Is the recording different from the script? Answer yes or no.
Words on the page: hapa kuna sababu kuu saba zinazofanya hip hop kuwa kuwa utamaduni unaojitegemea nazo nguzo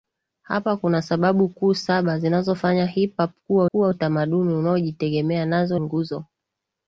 no